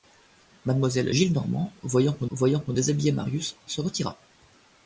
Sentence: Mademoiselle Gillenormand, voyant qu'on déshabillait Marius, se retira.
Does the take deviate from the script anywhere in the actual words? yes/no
yes